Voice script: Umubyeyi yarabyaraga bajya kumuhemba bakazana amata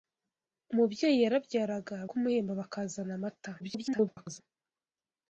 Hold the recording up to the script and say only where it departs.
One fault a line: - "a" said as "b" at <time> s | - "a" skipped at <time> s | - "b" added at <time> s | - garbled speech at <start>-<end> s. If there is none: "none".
- "bajya" skipped at 1.9 s
- garbled speech at 3.6-4.4 s